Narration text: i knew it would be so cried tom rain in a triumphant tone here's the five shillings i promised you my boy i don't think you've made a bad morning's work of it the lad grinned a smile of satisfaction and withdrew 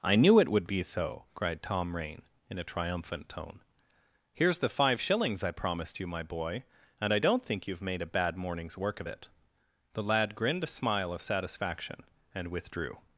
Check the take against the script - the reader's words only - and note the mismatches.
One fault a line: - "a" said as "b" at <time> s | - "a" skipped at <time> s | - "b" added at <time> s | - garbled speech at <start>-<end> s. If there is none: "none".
- "and" added at 7.0 s